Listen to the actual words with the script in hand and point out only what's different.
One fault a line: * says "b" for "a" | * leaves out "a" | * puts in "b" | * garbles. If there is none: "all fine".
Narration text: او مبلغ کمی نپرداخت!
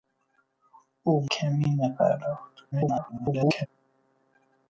* leaves out "مبلغ"
* garbles